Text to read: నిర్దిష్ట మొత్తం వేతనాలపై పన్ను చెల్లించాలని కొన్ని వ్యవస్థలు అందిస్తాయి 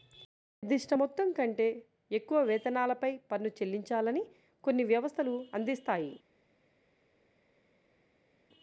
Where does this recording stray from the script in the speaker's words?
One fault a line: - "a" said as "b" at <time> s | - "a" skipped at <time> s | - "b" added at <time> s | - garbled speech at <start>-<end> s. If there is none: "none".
- "కంటే ఎక్కువ" added at 1.3 s